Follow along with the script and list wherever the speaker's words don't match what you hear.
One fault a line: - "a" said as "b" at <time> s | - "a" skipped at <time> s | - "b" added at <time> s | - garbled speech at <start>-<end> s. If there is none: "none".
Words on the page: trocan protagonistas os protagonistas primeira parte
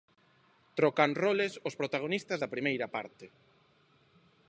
- "protagonistas" said as "roles" at 1.2 s
- "da" added at 2.4 s